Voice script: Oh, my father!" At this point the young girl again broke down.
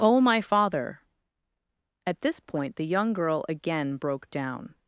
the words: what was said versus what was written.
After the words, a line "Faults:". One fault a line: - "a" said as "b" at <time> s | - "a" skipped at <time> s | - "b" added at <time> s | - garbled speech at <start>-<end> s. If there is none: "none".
Oh, my father!" At this point the young girl again broke down.
Faults:
none